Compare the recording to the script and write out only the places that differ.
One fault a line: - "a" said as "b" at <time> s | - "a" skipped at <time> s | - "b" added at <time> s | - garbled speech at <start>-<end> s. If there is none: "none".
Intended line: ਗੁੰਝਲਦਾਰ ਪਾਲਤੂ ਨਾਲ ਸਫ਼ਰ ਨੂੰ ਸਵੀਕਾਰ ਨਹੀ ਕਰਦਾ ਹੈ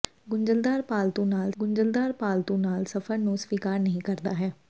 - "ਗੁੰਝਲਦਾਰ ਪਾਲਤੂ ਨਾਲ" added at 1.6 s